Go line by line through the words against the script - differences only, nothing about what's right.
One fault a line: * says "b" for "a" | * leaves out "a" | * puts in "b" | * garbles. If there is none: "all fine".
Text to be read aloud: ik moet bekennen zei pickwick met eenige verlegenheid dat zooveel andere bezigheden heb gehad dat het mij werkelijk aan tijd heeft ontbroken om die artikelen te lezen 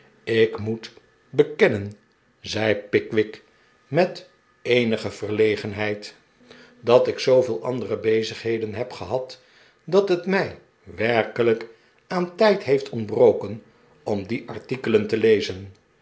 * puts in "ik"